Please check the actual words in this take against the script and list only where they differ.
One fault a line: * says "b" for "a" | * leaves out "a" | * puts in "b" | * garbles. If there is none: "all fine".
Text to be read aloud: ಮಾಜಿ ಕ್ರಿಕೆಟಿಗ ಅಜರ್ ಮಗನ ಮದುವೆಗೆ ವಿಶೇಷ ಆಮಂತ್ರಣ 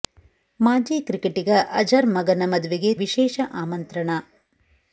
all fine